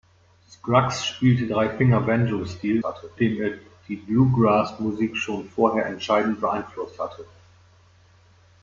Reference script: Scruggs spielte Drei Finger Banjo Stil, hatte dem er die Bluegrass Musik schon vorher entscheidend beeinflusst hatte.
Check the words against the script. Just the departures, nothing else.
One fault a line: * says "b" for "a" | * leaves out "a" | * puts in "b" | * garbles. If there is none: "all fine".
all fine